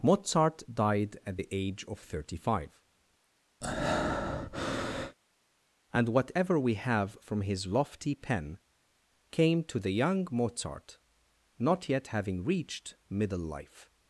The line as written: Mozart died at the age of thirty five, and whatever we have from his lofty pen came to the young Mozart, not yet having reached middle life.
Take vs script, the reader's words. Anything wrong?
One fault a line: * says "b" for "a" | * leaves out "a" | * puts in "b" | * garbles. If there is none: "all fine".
all fine